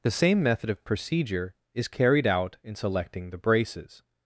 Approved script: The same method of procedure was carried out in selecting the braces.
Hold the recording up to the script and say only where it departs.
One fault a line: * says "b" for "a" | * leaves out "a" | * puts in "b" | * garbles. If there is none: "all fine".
* says "is" for "was"